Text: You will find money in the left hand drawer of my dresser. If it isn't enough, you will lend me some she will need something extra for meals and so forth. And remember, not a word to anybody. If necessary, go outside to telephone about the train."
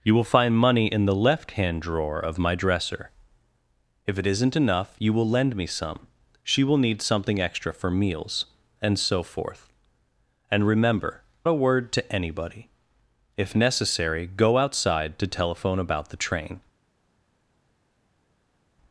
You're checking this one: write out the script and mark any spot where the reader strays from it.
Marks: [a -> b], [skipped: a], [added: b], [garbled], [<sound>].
You will find money in the left hand drawer of my dresser. If it isn't enough, you will lend me some she will need something extra for meals and so forth. And remember, [skipped: not] a word to anybody. If necessary, go outside to telephone about the train."